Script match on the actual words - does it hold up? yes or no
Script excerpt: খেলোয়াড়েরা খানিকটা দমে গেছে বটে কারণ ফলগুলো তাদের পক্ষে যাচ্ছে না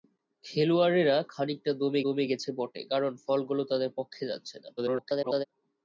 no